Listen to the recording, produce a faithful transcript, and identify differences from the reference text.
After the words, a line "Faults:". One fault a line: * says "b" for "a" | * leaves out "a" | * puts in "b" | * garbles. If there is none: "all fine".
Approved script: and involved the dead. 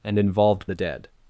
and involved the dead.
Faults:
all fine